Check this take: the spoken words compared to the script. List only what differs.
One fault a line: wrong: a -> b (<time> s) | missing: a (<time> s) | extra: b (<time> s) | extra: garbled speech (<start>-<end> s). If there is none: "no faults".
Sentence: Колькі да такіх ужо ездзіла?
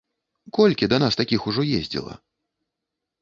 extra: нас (1.0 s)